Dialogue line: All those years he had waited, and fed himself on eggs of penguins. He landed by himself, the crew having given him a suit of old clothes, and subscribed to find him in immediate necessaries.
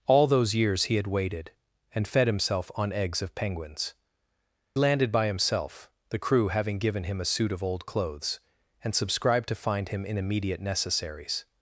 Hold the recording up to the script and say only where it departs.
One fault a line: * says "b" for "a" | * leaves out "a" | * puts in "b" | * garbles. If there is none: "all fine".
* leaves out "He"